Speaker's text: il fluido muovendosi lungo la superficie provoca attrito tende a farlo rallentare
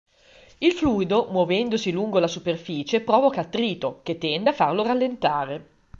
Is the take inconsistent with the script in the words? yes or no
yes